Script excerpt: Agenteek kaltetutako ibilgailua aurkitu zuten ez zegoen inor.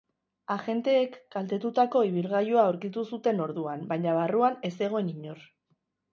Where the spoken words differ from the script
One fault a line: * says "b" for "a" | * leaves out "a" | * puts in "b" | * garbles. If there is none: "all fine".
* puts in "orduan baina barruan"